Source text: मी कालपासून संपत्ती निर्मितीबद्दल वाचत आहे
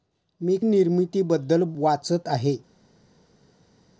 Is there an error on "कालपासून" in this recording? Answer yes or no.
yes